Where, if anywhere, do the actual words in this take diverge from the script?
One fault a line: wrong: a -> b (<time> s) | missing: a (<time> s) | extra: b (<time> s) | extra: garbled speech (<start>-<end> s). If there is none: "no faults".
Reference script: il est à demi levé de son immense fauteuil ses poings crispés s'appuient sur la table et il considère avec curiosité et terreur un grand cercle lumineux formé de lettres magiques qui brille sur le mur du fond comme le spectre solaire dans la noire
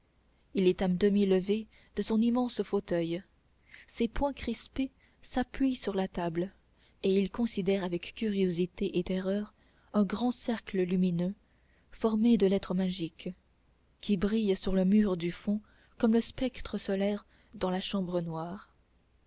extra: chambre (17.8 s)